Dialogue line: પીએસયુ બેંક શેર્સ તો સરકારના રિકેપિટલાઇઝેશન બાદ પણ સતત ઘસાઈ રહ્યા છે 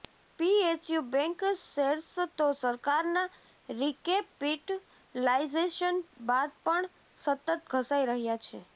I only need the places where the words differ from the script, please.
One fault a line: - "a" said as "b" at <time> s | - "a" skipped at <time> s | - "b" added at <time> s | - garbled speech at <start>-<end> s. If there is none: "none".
none